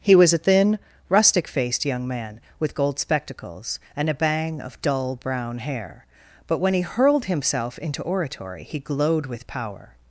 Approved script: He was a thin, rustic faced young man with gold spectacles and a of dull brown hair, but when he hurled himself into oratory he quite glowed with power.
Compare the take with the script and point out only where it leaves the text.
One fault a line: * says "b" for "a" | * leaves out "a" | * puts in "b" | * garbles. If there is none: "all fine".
* puts in "bang"
* leaves out "quite"